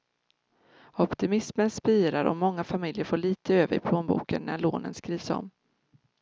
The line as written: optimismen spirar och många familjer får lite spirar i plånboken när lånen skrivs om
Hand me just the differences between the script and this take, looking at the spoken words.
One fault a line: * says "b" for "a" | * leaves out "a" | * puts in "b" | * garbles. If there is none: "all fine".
* says "över" for "spirar"